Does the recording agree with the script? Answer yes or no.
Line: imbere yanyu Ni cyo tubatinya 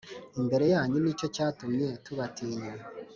no